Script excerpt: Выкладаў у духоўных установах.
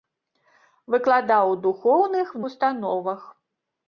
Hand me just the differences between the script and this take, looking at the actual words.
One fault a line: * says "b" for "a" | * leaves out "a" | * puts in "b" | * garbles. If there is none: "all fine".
all fine